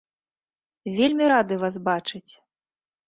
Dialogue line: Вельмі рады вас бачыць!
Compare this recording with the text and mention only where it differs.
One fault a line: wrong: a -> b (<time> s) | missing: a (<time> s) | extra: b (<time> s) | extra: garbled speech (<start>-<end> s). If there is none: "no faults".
no faults